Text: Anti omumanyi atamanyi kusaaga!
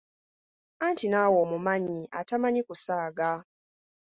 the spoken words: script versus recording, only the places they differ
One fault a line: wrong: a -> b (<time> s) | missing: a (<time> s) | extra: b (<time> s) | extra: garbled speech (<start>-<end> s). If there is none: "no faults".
extra: naawe (1.1 s)